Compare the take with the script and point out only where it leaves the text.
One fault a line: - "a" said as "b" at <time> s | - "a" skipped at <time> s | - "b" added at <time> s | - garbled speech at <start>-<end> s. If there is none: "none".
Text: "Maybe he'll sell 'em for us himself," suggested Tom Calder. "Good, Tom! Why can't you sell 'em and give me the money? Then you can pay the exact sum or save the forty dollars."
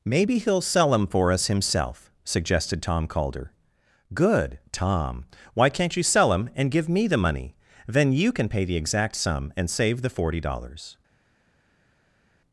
- "or" said as "and" at 9.6 s